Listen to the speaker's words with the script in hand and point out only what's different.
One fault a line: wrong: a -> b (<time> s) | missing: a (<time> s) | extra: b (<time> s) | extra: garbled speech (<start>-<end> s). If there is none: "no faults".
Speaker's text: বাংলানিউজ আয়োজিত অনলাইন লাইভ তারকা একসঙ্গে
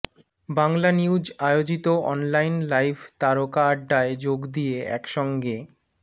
extra: আড্ডায় যোগ দিয়ে (3.7 s)